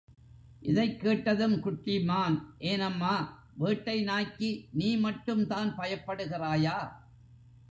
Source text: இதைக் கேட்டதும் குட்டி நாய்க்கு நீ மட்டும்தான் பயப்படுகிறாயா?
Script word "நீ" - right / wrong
right